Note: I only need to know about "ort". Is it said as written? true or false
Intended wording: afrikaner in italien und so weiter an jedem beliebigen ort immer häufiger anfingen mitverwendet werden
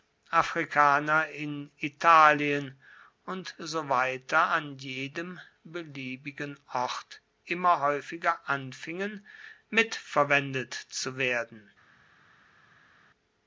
true